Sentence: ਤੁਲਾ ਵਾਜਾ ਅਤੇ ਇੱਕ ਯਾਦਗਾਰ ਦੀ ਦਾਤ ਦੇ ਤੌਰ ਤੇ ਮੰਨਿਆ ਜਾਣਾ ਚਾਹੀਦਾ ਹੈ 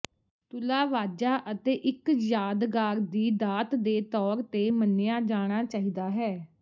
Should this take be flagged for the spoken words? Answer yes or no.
no